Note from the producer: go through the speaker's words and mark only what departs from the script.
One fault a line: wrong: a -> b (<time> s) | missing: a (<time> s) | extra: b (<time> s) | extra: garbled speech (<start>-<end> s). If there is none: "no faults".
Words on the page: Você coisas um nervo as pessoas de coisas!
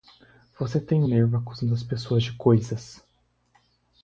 wrong: coisas -> tem (0.8 s)
extra: acusando (1.4 s)